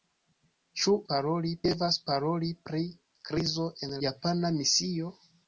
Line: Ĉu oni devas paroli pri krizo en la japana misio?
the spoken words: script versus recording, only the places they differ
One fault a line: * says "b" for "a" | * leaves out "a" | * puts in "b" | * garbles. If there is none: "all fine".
* says "paroli" for "oni"
* leaves out "la"